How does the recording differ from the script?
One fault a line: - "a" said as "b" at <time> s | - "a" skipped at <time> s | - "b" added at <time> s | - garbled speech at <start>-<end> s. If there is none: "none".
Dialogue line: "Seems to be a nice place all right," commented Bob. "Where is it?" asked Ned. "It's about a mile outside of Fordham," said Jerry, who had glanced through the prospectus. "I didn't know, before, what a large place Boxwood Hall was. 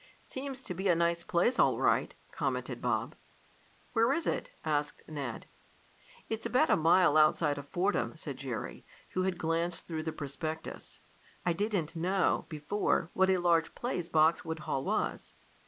none